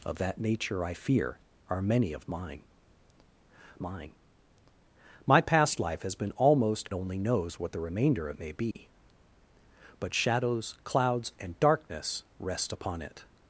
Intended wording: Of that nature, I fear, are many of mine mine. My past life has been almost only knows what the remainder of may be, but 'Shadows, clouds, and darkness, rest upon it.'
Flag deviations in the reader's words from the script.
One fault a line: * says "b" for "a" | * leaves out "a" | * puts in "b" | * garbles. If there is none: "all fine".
all fine